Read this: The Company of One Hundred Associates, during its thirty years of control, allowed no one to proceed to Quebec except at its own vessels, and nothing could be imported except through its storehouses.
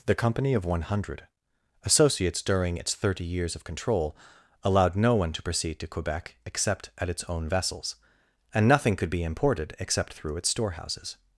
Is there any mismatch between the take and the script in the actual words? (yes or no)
no